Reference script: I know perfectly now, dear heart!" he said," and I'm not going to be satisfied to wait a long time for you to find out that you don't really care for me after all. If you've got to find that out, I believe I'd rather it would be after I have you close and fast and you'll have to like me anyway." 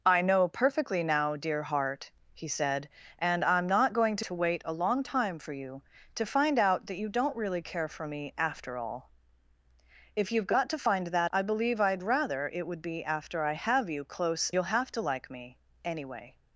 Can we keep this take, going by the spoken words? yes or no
no